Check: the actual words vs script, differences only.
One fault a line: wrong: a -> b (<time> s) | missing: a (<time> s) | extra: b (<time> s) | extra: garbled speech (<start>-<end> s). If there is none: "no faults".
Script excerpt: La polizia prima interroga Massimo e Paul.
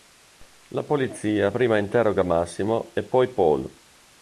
extra: poi (3.0 s)